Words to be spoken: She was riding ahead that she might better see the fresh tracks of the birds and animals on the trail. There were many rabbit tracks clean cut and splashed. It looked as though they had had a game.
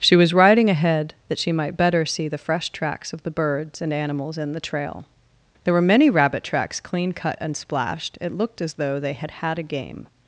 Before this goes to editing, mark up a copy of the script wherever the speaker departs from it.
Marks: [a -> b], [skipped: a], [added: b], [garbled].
She was riding ahead that she might better see the fresh tracks of the birds and animals [on -> in] the trail. There were many rabbit tracks clean cut and splashed. It looked as though they had had a game.